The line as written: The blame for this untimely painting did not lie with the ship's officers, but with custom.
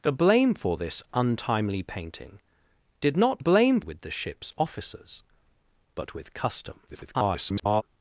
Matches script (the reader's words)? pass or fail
fail